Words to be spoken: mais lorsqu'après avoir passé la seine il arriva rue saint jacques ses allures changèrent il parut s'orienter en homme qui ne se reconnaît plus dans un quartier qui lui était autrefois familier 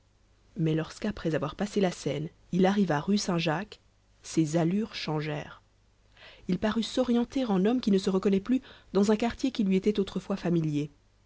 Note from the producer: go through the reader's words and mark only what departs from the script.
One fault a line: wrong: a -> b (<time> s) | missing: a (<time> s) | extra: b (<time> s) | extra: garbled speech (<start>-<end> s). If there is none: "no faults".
no faults